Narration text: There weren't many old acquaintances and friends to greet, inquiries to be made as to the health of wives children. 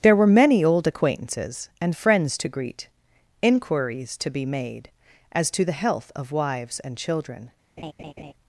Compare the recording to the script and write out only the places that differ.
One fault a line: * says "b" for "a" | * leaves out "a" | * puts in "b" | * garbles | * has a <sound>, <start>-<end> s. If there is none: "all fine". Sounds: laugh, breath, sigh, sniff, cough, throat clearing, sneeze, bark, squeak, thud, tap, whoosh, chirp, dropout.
* says "were" for "weren't"
* puts in "and"
* has a laugh, 7.8-8.3 s